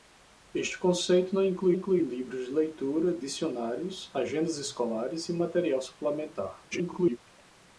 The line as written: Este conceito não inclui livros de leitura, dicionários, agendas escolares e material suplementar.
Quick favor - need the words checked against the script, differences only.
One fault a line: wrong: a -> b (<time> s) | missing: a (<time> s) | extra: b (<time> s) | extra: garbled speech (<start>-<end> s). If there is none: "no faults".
extra: inclui (1.7 s)
extra: garbled speech (6.7-7.2 s)